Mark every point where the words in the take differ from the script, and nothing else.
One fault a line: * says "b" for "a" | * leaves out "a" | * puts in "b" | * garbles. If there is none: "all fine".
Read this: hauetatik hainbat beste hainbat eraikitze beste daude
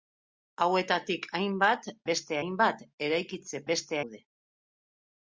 all fine